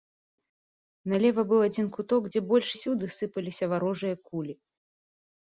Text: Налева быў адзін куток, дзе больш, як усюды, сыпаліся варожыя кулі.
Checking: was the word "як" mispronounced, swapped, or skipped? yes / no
yes